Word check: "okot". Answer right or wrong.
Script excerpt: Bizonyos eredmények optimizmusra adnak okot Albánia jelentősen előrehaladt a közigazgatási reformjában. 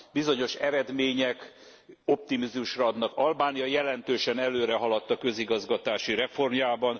wrong